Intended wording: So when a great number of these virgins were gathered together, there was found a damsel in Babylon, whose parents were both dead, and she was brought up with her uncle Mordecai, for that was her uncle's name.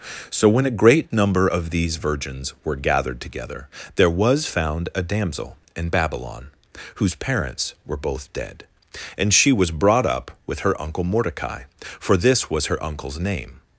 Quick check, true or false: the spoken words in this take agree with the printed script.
false